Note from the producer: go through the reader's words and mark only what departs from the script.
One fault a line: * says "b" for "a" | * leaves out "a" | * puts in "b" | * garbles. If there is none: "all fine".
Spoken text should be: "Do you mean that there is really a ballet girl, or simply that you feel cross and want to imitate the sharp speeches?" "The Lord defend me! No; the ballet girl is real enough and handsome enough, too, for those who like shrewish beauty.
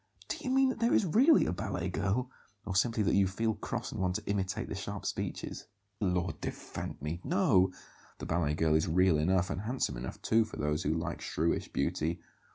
* leaves out "The"